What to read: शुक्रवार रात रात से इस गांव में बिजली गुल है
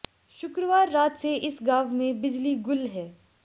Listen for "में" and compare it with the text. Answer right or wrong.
right